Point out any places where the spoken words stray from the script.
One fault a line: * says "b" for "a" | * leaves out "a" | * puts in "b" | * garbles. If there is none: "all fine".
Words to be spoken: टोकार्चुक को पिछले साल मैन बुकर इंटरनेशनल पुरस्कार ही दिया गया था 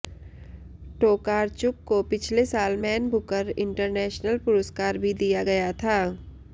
* says "भी" for "ही"